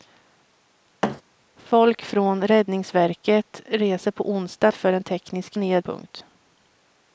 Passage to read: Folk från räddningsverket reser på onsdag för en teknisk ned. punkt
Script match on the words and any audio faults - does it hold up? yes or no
no